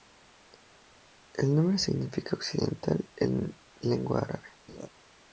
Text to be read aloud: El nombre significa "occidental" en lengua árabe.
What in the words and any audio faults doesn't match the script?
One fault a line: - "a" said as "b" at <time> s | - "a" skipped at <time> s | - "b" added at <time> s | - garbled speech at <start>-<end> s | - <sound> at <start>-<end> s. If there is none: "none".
- laugh at 4.7-4.9 s